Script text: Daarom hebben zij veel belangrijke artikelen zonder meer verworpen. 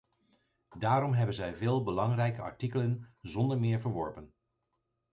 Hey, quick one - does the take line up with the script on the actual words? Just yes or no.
yes